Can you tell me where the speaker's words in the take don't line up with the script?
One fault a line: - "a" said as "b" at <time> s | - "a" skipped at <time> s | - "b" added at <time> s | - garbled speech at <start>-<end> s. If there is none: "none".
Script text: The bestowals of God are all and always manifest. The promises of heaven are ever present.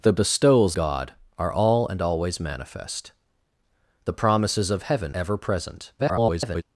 - "of" skipped at 0.8 s
- "are" skipped at 5.2 s
- garbled speech at 6.0-6.6 s